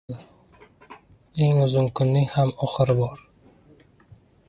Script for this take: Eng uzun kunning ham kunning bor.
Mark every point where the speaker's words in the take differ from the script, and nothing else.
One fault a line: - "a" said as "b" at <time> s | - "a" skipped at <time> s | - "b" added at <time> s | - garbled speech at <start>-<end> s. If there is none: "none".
- "kunning" said as "oxiri" at 2.7 s